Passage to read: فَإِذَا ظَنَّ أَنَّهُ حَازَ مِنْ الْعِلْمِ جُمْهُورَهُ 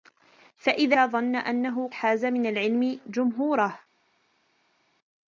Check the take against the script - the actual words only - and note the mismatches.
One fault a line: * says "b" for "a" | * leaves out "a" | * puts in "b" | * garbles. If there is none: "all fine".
all fine